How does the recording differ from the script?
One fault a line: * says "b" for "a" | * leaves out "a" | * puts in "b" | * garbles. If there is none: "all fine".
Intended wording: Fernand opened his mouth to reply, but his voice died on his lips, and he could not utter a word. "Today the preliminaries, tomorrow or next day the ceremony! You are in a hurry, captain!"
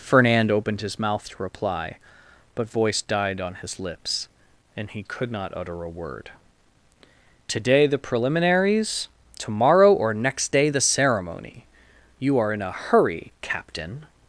* leaves out "his"